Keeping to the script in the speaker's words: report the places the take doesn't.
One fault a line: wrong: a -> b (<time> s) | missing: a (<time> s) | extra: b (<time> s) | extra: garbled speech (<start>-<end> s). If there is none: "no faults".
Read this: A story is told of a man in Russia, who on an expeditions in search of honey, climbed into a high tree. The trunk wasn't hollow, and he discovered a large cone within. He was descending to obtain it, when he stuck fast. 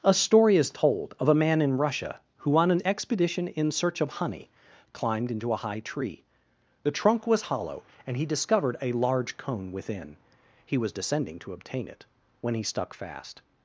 wrong: expeditions -> expedition (2.8 s)
wrong: wasn't -> was (7.3 s)